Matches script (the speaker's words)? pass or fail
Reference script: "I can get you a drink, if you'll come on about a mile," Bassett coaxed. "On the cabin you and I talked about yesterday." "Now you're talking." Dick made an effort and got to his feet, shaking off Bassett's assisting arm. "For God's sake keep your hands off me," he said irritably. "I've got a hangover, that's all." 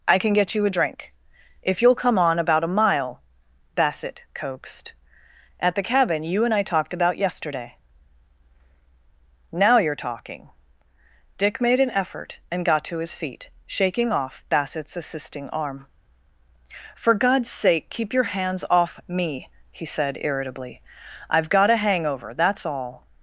fail